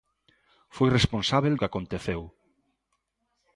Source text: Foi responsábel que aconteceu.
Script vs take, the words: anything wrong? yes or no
no